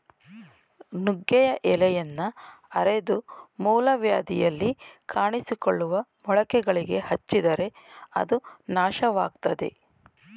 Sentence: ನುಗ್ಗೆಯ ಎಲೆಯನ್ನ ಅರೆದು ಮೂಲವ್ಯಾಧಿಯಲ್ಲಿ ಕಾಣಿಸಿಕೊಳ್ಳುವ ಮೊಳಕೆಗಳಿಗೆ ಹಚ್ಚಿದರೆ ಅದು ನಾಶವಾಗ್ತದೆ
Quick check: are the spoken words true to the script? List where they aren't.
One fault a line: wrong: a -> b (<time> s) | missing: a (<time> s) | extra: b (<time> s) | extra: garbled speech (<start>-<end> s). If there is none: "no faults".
no faults